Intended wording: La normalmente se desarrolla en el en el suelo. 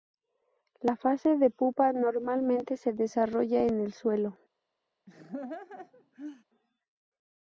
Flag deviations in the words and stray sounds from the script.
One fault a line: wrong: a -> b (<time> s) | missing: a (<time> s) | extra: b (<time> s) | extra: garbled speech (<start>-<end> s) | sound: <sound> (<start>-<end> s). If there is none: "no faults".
extra: fase de pupa (0.9 s)
missing: en el (3.9 s)
sound: laugh (5.1-6.4 s)